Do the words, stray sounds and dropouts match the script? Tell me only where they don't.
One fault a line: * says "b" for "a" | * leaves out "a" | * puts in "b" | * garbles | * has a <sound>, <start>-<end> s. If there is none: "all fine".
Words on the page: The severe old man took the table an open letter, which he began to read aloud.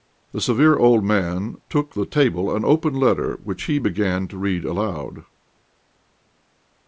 all fine